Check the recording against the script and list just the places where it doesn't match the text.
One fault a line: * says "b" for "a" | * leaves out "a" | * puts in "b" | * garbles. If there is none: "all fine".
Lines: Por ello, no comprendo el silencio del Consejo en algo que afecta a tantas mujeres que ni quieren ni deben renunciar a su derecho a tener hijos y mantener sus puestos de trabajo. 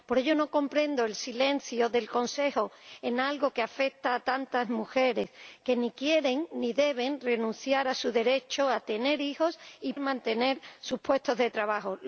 all fine